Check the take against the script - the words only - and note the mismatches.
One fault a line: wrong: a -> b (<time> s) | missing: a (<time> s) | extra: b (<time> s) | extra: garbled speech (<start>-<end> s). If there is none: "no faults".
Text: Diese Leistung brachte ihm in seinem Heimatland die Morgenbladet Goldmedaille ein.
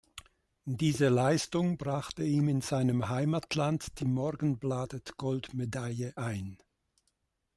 no faults